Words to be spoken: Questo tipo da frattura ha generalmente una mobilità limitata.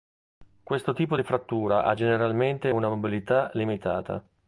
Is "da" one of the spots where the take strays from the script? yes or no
yes